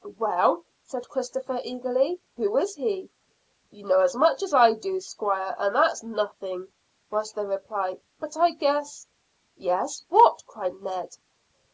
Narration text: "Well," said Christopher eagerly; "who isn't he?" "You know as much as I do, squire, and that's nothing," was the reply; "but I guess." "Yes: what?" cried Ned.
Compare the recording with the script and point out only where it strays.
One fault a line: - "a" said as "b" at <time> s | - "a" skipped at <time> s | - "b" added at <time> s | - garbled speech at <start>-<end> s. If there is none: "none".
- "isn't" said as "is" at 2.6 s